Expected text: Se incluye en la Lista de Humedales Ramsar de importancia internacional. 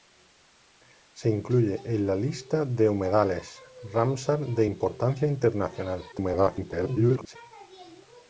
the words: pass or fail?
fail